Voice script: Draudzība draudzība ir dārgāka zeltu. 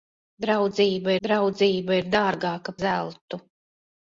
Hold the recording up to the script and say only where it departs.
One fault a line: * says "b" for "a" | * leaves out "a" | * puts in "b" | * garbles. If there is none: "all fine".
all fine